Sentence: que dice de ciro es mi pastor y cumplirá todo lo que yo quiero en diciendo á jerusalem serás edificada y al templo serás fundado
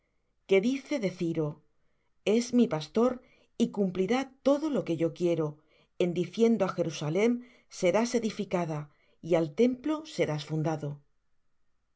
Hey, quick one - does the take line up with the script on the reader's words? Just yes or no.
yes